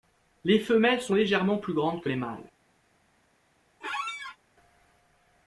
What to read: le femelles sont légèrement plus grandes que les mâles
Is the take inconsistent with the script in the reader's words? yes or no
yes